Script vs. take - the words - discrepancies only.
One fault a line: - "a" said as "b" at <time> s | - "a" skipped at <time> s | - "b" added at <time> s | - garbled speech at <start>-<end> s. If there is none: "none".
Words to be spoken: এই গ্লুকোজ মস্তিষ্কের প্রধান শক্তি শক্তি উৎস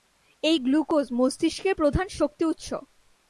- "শক্তি" skipped at 2.4 s